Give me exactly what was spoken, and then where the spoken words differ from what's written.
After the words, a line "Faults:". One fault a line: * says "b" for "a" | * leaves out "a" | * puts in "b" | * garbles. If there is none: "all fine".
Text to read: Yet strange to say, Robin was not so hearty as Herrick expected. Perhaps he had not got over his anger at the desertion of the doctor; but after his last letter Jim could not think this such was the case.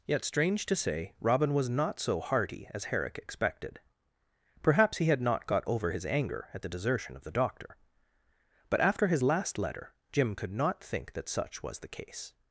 Yet strange to say, Robin was not so hearty as Herrick expected. Perhaps he had not got over his anger at the desertion of the doctor; but after his last letter Jim could not think that such was the case.
Faults:
* says "that" for "this"